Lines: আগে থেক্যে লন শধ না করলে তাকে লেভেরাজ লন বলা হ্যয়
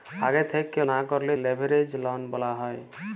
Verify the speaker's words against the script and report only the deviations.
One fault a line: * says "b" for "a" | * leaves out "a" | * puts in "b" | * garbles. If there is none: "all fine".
* leaves out "লন শধ"
* leaves out "তাকে"